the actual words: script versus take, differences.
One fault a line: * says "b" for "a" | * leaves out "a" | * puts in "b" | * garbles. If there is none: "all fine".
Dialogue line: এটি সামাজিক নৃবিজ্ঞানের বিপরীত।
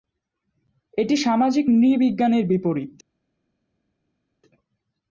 all fine